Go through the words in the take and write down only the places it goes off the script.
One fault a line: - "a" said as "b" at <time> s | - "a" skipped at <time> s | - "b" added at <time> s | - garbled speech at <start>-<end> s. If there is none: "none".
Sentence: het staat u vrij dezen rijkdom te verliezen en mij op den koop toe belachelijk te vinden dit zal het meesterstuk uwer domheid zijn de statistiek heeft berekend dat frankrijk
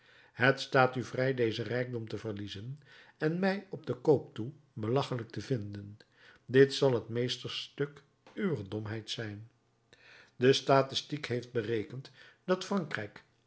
none